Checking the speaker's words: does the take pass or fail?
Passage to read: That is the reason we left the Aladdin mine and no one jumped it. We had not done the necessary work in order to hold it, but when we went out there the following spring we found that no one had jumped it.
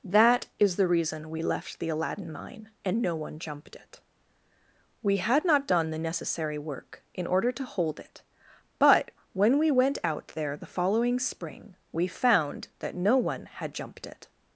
pass